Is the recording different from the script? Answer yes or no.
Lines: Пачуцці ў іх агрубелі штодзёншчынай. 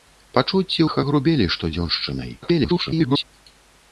yes